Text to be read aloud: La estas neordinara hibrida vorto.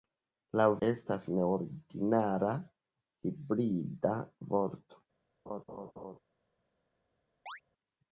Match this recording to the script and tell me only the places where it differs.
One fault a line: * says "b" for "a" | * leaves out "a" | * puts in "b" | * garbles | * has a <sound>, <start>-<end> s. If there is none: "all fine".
* has a laugh, 5.5-6.2 s
* has a chirp, 7.5-7.6 s